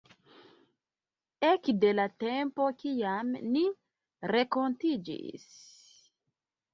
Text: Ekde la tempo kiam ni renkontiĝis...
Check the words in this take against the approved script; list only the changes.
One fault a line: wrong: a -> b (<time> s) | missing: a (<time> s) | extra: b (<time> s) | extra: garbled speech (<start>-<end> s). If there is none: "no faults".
no faults